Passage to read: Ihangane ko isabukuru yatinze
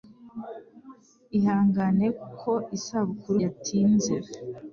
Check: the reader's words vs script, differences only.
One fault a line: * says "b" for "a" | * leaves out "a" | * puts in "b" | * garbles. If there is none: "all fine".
all fine